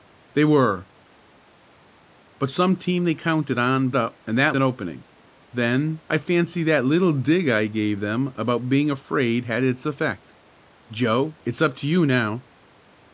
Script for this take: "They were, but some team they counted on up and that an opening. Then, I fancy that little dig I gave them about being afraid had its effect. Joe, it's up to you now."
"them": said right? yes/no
yes